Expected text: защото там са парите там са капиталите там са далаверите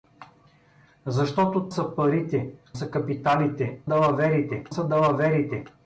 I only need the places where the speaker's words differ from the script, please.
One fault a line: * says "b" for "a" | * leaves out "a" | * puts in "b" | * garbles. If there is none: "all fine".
* leaves out "там"
* leaves out "там"
* says "далаверите" for "там"